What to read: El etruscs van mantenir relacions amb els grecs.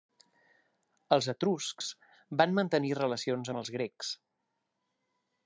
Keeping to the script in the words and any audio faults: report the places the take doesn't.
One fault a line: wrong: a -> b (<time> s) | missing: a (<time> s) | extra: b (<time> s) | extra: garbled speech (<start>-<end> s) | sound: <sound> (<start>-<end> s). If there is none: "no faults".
wrong: El -> Els (1.2 s)